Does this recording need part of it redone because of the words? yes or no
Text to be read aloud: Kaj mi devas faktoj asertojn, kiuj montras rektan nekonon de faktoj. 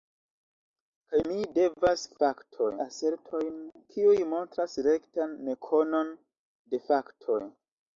no